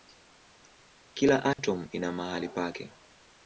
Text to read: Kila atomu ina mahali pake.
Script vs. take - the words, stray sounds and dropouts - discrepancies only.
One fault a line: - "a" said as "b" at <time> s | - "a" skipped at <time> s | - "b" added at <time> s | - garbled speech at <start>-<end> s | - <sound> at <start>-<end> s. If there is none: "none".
- dropout at 1.5-1.6 s